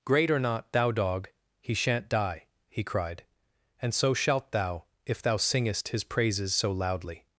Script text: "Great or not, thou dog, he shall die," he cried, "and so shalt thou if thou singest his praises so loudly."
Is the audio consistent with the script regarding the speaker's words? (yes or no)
no